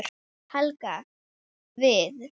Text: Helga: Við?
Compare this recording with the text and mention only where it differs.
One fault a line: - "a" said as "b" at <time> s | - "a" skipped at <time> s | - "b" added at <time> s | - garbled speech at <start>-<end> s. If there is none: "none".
none